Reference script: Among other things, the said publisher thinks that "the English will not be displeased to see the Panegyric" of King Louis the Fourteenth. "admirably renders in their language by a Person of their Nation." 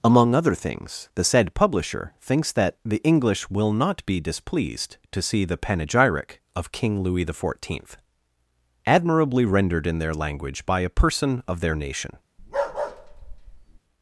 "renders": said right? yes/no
no